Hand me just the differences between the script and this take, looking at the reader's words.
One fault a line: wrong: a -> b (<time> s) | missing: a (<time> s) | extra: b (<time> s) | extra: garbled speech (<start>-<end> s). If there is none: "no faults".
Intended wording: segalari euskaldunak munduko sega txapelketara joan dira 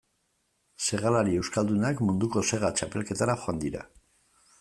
no faults